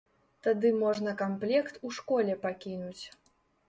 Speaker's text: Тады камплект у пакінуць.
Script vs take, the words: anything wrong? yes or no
yes